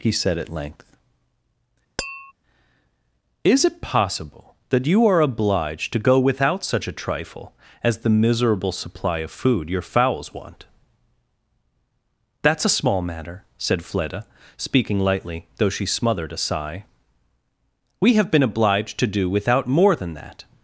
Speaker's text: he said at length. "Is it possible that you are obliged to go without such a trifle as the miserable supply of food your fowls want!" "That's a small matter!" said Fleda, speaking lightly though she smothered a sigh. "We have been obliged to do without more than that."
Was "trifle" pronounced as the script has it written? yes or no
yes